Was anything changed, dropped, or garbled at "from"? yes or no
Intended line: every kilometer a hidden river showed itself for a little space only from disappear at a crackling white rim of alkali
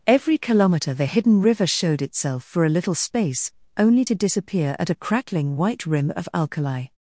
yes